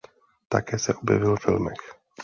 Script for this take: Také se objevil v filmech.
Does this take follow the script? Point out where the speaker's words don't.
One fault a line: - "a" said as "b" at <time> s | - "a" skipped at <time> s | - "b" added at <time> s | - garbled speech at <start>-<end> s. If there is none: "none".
none